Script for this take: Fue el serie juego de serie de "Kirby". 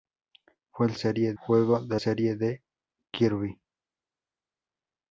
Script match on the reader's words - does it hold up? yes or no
yes